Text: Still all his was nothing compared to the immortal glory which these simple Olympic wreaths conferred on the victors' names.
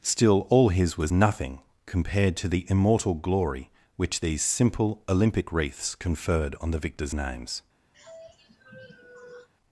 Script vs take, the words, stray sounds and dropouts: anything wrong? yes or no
yes